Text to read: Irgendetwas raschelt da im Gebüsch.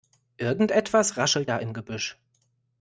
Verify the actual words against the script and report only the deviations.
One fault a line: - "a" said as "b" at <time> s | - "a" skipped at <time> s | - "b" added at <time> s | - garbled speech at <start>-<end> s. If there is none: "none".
none